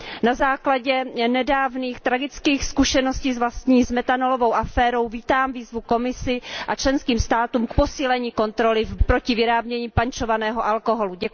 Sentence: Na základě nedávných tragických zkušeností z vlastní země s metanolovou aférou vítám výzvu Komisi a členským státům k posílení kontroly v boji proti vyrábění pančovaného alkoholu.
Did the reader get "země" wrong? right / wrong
wrong